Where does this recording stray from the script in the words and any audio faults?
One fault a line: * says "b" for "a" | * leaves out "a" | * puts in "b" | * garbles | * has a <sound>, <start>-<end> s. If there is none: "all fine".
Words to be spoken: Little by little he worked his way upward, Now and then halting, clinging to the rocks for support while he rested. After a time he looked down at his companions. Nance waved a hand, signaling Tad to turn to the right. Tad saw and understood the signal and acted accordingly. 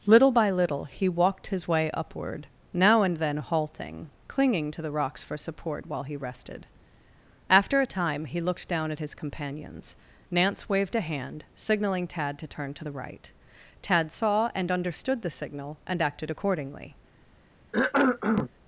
* says "walked" for "worked"
* has a cough, 17.7-18.5 s